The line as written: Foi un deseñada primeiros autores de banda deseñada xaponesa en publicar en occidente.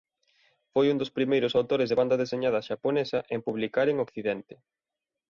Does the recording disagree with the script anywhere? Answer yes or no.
yes